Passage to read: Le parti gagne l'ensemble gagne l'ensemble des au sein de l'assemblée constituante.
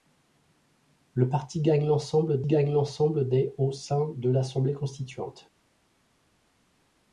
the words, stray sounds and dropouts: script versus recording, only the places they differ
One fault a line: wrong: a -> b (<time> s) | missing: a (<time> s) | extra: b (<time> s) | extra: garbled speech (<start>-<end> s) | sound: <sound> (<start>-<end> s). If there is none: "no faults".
no faults